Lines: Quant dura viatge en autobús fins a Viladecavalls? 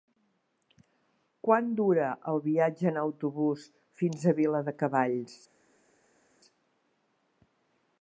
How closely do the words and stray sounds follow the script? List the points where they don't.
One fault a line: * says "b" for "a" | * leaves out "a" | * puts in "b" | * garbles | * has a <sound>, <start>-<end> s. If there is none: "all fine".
* puts in "el"